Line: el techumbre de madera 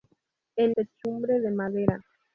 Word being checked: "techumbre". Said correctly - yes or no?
yes